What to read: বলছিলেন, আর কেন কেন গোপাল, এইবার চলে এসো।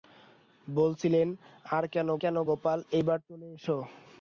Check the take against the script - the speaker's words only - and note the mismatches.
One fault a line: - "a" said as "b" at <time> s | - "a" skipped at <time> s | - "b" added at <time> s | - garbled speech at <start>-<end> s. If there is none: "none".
none